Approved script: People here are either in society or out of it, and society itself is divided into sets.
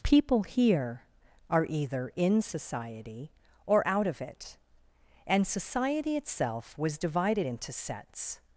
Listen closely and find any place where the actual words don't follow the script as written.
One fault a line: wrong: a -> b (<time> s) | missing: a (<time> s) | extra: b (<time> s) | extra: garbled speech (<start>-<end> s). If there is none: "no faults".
wrong: is -> was (6.8 s)